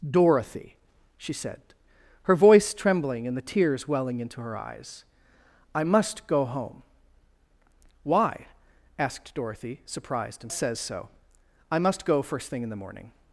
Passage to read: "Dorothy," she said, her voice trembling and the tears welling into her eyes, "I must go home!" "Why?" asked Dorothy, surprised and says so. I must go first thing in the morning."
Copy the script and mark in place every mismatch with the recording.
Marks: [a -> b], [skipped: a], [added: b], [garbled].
"Dorothy," she said, her voice trembling and the tears welling into her eyes, "I must go home!" "Why?" asked Dorothy, surprised and says so. I must go first thing in the morning."